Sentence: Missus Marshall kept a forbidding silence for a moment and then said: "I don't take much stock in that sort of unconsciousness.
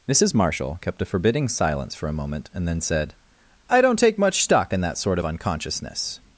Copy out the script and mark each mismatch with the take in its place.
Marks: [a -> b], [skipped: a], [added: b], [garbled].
Missus Marshall kept a forbidding silence for a moment and then said: "I don't take much stock in that sort of unconsciousness.